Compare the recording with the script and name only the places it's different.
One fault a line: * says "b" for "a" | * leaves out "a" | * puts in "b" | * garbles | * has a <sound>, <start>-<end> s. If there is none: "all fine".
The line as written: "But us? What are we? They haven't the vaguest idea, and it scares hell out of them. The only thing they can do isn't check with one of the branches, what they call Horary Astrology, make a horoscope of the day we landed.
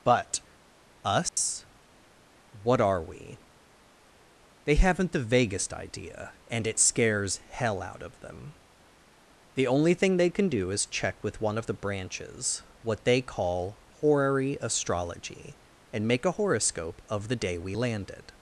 * has a dropout, 1.3-1.4 s
* says "is" for "isn't"
* puts in "and"